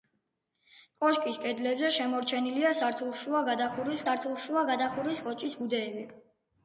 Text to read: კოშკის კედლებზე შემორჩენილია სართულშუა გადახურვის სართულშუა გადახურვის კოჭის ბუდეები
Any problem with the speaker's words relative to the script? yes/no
no